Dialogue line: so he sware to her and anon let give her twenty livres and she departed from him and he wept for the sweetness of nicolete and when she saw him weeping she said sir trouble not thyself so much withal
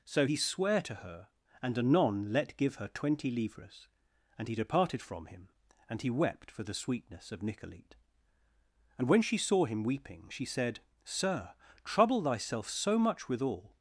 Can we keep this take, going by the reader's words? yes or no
no